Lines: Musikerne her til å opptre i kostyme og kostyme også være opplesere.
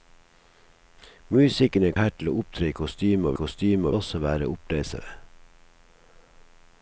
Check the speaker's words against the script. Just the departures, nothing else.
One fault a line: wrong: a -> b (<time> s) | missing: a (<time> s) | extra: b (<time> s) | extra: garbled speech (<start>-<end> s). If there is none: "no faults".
no faults